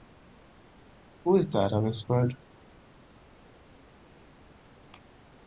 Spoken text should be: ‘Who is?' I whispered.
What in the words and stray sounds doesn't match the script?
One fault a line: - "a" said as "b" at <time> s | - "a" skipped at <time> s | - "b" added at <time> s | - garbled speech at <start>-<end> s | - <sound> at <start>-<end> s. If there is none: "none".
- "that" added at 1.5 s